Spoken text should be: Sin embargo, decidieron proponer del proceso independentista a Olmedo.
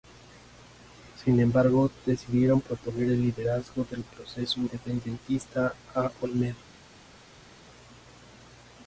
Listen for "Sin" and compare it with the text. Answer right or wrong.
right